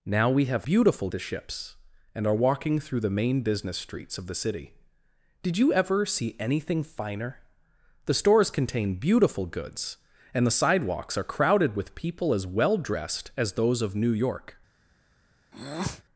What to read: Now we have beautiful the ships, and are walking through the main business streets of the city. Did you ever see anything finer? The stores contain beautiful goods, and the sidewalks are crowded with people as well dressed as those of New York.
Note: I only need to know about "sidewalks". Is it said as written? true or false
true